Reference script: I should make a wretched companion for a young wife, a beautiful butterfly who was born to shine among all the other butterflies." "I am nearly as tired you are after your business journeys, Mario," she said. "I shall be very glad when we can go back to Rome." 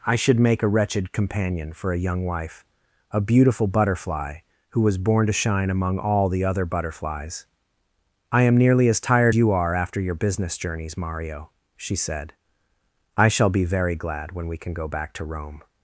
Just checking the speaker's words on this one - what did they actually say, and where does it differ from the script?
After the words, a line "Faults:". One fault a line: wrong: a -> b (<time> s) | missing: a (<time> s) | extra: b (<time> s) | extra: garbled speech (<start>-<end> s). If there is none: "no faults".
I should make a wretched companion for a young wife, a beautiful butterfly who was born to shine among all the other butterflies." "I am nearly as tired you are after your business journeys, Mario," she said. "I shall be very glad when we can go back to Rome."
Faults:
no faults